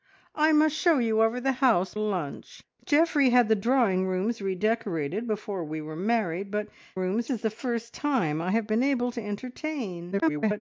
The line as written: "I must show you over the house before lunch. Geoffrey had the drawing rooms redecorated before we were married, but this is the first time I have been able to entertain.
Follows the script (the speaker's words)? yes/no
no